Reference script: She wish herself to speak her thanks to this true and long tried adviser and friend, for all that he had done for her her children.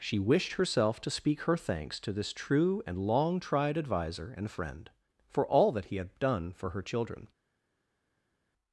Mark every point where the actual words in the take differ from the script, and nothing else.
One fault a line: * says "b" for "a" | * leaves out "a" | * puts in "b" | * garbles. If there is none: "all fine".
* says "wished" for "wish"
* leaves out "her"